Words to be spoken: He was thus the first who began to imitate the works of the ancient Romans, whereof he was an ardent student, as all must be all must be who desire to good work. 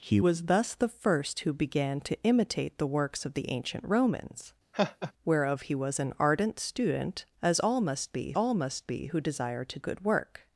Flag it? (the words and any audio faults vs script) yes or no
yes